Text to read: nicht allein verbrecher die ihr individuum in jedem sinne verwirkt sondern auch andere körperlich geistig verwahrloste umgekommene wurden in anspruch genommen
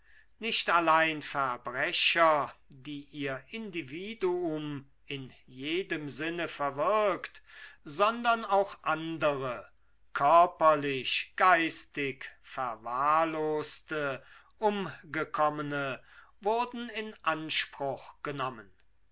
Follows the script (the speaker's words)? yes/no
yes